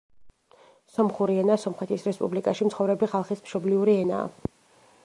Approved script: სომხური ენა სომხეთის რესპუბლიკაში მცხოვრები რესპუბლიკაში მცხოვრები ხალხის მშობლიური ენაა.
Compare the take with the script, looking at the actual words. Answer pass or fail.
fail